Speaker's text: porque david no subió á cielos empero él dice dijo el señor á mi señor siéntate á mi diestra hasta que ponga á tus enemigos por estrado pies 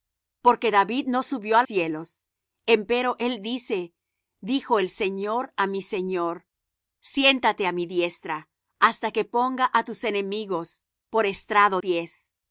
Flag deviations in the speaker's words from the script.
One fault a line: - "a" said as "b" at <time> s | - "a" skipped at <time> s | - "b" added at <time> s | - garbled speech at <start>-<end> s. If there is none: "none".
none